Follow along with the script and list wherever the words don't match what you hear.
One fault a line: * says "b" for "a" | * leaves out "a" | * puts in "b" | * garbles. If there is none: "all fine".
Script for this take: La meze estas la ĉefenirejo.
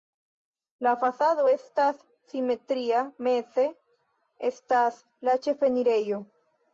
* puts in "fasado estas simetria"